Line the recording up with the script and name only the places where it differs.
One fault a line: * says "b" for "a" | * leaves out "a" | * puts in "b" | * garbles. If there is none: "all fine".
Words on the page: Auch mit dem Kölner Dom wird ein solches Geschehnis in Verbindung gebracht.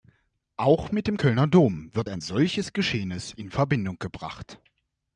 all fine